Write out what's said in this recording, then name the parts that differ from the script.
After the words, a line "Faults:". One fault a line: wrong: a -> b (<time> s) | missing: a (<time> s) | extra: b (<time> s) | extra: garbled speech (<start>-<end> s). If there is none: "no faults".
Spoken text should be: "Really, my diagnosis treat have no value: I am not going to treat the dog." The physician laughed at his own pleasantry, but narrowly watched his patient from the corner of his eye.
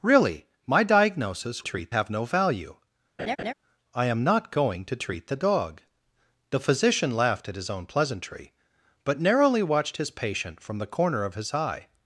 "Really, my diagnosis treat have no value: I am not going to treat the dog." The physician laughed at his own pleasantry, but narrowly watched his patient from the corner of his eye.
Faults:
no faults